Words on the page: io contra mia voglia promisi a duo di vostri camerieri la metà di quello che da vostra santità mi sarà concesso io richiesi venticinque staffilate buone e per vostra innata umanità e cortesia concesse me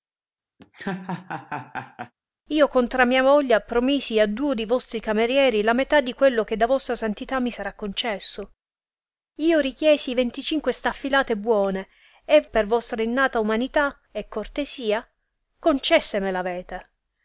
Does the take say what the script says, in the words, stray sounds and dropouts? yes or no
no